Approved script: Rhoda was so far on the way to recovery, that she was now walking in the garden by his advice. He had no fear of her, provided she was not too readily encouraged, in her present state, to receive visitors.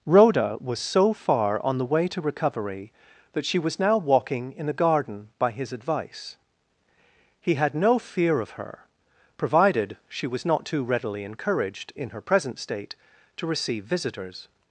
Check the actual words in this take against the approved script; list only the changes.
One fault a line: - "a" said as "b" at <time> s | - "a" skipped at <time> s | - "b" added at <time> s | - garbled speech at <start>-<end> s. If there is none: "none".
none